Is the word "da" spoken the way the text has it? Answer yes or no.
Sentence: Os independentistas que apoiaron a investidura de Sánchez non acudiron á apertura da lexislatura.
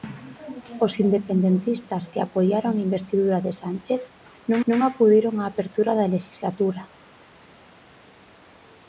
yes